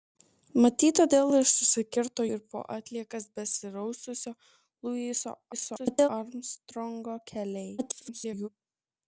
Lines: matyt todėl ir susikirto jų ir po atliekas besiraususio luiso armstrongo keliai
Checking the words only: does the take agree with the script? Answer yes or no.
no